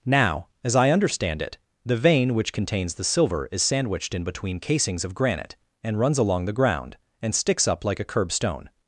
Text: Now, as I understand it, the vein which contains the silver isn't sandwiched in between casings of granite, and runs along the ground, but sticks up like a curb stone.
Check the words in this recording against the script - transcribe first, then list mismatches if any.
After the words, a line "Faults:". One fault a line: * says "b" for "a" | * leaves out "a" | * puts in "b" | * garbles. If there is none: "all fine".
Now, as I understand it, the vein which contains the silver is sandwiched in between casings of granite, and runs along the ground, and sticks up like a curb stone.
Faults:
* says "is" for "isn't"
* says "and" for "but"